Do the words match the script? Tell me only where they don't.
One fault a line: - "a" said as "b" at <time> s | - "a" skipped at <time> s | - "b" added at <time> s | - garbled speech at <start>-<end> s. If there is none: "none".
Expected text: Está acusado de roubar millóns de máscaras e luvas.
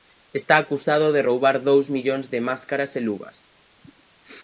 - "dous" added at 1.7 s